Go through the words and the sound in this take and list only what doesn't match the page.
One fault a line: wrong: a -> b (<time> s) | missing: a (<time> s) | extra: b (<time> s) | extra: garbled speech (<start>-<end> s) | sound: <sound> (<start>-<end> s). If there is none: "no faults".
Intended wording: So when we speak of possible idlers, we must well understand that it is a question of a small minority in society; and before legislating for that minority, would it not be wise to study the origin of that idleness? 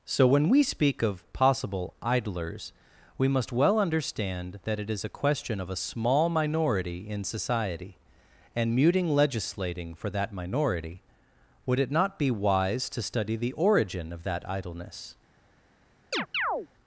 wrong: before -> muting (8.8 s)
sound: chirp (16.1-16.7 s)